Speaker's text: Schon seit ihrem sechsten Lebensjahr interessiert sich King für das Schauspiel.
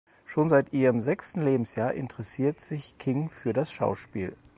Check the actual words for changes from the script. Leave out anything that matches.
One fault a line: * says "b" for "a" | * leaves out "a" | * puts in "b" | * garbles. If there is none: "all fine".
all fine